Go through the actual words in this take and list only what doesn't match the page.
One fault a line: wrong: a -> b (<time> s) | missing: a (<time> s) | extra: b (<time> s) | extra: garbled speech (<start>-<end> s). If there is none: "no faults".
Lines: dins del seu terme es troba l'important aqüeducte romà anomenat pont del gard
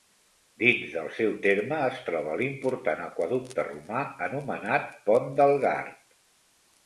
no faults